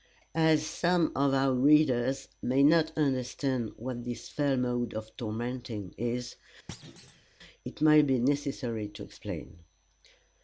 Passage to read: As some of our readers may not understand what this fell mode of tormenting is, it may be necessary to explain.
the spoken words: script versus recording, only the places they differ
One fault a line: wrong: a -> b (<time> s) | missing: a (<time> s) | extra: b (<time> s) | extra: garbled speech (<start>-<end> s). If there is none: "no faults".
no faults